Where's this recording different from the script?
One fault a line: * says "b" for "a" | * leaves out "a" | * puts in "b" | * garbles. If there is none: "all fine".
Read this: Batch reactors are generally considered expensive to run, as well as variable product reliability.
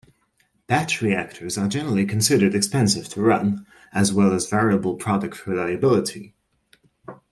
all fine